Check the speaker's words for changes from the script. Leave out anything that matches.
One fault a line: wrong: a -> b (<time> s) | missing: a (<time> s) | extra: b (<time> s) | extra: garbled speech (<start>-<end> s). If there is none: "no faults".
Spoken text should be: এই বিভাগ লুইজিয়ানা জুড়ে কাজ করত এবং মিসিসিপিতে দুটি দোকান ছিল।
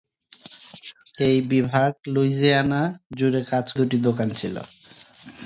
missing: করত এবং মিসিসিপিতে (3.7 s)